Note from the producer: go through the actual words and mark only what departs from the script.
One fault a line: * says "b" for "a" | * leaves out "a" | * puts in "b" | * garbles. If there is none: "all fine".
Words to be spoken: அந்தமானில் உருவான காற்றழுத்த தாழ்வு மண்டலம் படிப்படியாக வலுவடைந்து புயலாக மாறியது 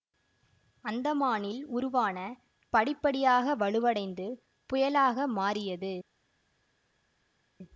* leaves out "காற்றழுத்த தாழ்வு மண்டலம்"